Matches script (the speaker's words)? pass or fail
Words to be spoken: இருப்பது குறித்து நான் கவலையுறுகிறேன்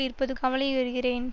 fail